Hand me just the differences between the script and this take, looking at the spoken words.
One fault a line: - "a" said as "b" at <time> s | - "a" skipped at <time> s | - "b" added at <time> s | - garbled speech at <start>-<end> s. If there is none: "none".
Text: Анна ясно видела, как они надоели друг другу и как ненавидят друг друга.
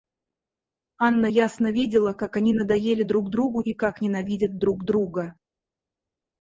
none